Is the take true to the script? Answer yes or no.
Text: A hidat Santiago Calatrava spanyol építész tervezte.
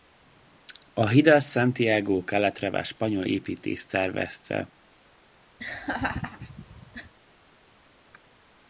yes